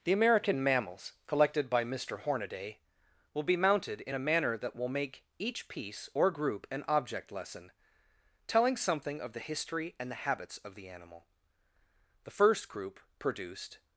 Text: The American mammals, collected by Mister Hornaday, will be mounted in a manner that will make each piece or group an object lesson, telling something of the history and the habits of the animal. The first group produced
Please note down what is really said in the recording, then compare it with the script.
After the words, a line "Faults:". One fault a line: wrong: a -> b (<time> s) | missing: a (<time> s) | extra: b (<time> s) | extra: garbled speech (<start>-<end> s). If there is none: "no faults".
The American mammals, collected by Mister Hornaday, will be mounted in a manner that will make each piece or group an object lesson, telling something of the history and the habits of the animal. The first group produced
Faults:
no faults